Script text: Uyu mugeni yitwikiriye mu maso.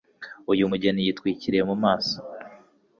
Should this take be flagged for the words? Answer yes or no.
no